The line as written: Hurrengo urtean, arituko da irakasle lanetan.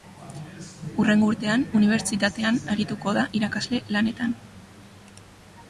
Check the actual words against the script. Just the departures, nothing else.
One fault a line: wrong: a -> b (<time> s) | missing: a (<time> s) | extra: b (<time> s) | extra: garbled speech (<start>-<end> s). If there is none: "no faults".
extra: unibertsitatean (1.8 s)